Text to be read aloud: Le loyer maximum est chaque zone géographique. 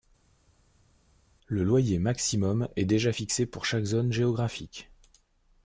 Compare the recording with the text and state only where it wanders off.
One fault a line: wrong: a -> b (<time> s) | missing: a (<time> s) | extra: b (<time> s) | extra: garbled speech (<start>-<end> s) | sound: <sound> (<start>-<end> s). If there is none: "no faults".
extra: déjà fixé pour (2.9 s)